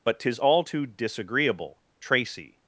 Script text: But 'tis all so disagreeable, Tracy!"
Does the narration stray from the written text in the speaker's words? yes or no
yes